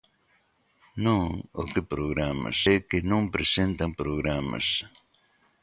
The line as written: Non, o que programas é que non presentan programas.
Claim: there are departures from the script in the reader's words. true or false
false